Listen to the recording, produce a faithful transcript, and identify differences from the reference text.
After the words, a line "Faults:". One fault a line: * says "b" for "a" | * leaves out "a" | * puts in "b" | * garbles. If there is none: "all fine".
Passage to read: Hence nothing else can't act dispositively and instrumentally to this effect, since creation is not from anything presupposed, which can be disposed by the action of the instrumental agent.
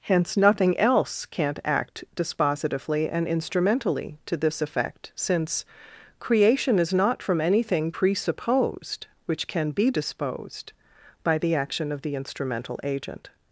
Hence nothing else can't act dispositively and instrumentally to this effect, since creation is not from anything presupposed, which can be disposed by the action of the instrumental agent.
Faults:
all fine